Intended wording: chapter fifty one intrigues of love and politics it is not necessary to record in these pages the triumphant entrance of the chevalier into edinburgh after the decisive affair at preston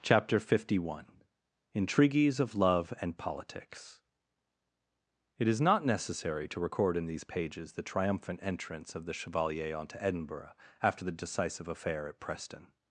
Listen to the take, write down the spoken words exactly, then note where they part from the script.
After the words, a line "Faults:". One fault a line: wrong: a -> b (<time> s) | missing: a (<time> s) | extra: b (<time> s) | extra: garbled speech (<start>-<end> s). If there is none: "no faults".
chapter fifty one intrigues of love and politics it is not necessary to record in these pages the triumphant entrance of the chevalier onto edinburgh after the decisive affair at preston
Faults:
wrong: into -> onto (9.8 s)